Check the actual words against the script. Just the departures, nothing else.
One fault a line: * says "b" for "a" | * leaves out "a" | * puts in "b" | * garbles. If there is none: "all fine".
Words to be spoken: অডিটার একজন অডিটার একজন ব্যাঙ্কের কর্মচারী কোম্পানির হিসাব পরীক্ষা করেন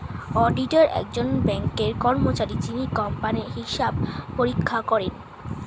* leaves out "অডিটার একজন"
* puts in "যিনি"